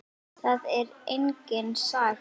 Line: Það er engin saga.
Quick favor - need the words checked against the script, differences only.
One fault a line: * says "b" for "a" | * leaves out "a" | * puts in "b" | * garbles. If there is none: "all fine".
all fine